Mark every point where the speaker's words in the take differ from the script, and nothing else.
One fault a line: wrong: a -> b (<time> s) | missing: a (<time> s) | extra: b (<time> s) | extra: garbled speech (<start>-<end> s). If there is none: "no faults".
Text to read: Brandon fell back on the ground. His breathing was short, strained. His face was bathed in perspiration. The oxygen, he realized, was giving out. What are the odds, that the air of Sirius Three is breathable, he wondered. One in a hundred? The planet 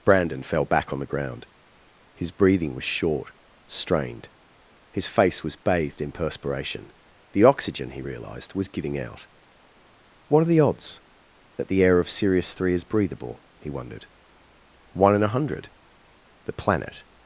no faults